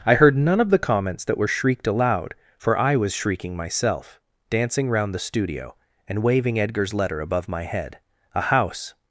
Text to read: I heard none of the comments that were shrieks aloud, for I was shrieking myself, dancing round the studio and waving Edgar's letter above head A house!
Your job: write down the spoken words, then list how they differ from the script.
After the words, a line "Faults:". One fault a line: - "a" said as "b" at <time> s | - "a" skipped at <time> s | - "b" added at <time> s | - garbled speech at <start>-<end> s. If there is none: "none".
I heard none of the comments that were shrieked aloud, for I was shrieking myself, dancing round the studio and waving Edgar's letter above my head A house!
Faults:
- "shrieks" said as "shrieked" at 1.5 s
- "my" added at 7.5 s